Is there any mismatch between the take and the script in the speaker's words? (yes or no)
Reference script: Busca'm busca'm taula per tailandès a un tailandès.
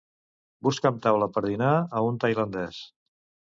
yes